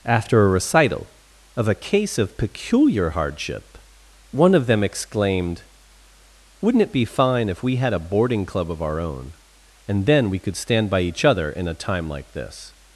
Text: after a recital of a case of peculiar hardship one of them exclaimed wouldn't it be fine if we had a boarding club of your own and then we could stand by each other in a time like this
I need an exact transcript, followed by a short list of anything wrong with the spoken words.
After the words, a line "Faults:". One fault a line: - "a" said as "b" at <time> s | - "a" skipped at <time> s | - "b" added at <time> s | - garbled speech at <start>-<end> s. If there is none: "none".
after a recital of a case of peculiar hardship one of them exclaimed wouldn't it be fine if we had a boarding club of our own and then we could stand by each other in a time like this
Faults:
- "your" said as "our" at 8.8 s